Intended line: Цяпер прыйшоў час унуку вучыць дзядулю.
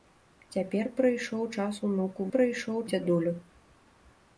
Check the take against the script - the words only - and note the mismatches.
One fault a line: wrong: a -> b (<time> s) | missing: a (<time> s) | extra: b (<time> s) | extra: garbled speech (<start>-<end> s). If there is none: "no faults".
wrong: вучыць -> прыйшоў (2.3 s)